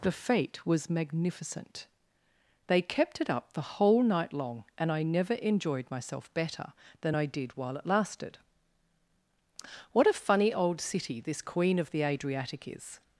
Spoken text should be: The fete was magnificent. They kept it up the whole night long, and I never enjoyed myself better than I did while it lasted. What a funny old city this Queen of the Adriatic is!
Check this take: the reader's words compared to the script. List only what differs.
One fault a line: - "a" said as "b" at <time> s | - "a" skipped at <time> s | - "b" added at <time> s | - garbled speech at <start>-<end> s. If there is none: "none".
none